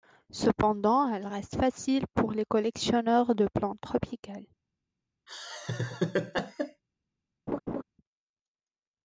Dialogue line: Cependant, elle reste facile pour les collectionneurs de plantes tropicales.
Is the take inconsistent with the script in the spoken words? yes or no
no